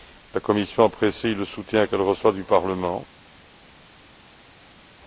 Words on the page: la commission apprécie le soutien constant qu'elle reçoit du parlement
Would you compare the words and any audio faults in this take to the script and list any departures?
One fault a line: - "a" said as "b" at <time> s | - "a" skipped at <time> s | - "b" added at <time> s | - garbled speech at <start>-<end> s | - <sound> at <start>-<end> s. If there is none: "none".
- "constant" skipped at 1.9 s